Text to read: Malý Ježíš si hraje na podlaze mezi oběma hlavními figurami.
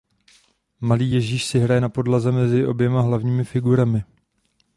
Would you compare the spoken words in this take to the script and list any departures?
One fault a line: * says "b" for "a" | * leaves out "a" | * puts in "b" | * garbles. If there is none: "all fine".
all fine